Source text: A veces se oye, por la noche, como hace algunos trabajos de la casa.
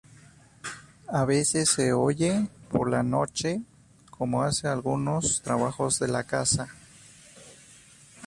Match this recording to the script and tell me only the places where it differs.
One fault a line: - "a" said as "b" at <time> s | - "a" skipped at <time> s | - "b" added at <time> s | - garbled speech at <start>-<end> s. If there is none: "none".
none